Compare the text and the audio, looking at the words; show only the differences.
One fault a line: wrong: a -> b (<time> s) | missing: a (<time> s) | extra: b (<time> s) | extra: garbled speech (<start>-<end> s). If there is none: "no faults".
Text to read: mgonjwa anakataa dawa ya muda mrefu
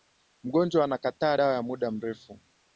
no faults